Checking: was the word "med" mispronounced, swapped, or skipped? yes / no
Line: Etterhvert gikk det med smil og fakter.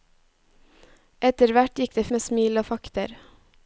no